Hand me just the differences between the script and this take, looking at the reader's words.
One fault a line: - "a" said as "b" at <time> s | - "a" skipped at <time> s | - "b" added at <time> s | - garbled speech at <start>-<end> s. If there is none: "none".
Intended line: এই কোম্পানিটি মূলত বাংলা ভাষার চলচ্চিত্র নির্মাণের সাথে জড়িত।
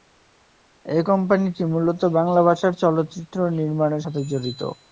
none